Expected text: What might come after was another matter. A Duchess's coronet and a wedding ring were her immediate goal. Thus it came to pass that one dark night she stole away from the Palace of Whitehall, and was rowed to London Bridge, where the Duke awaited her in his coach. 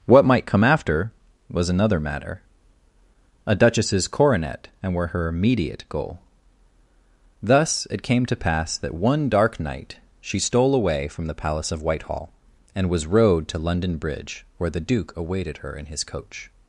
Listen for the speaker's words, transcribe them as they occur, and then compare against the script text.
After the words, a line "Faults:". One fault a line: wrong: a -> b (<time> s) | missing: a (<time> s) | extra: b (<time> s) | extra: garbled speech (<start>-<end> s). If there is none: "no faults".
What might come after was another matter. A Duchess's coronet and were her immediate goal. Thus it came to pass that one dark night she stole away from the Palace of Whitehall, and was rowed to London Bridge, where the Duke awaited her in his coach.
Faults:
missing: a wedding ring (5.0 s)